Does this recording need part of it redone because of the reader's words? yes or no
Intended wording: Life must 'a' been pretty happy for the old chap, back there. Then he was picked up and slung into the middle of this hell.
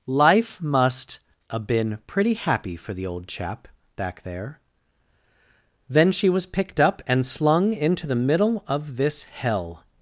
yes